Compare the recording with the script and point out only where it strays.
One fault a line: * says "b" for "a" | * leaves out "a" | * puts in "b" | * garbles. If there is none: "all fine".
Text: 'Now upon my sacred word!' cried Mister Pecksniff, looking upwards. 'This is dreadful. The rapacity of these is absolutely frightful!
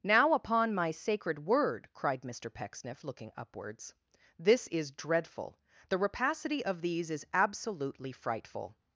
all fine